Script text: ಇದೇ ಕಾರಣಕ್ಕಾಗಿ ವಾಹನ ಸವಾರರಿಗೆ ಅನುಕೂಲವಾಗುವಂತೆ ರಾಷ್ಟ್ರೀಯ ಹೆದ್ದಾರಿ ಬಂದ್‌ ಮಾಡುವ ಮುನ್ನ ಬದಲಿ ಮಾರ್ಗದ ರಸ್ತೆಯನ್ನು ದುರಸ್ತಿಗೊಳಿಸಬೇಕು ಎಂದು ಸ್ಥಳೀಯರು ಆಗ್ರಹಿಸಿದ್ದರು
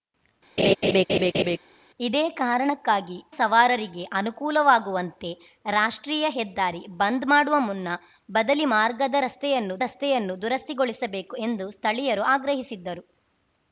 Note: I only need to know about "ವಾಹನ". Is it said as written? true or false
false